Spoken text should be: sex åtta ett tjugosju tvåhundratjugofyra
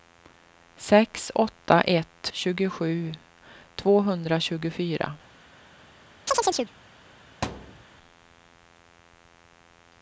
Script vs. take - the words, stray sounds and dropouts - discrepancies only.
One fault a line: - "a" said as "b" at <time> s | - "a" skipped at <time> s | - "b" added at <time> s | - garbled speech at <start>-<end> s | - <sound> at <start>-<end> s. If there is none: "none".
- chirp at 6.3-6.7 s
- thud at 7.4-7.8 s